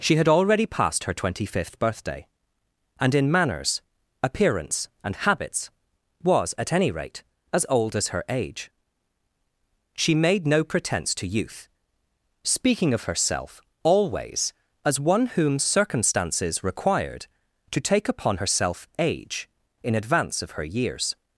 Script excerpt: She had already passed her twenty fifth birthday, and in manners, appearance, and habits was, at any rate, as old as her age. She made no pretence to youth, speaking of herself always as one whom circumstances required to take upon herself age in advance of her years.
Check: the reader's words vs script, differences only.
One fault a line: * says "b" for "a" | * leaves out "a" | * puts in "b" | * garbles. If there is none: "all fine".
all fine